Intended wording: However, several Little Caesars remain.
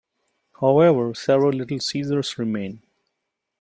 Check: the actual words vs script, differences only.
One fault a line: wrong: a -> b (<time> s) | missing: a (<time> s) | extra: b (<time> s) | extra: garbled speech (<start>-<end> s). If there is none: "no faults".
no faults